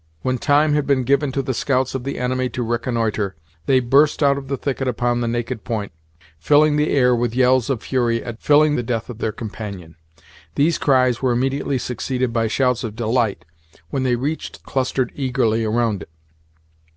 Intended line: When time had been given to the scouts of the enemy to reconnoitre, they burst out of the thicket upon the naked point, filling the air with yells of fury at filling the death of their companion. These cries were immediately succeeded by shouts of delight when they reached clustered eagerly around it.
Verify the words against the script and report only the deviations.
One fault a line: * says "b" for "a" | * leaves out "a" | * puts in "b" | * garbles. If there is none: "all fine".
all fine